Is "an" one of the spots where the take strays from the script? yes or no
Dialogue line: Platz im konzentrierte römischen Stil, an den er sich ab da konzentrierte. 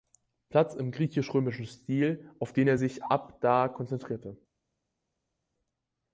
yes